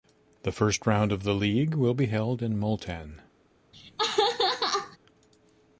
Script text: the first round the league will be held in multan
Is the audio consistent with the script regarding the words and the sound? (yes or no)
no